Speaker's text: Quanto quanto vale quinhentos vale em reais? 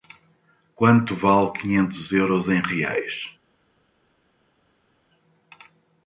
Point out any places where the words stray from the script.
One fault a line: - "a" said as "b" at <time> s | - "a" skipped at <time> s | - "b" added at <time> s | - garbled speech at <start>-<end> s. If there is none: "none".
- "quanto" skipped at 1.1 s
- "vale" said as "euros" at 2.1 s